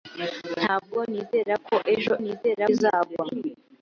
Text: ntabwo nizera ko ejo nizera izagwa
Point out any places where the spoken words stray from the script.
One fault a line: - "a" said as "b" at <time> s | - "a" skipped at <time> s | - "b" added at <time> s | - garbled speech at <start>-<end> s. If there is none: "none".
none